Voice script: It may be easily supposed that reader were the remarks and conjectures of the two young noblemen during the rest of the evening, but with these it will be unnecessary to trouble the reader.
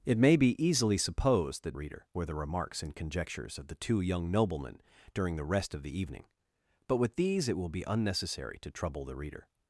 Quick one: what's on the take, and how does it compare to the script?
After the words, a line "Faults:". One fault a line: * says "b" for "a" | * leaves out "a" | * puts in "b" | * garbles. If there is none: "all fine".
It may be easily supposed that reader were the remarks and conjectures of the two young noblemen during the rest of the evening, but with these it will be unnecessary to trouble the reader.
Faults:
all fine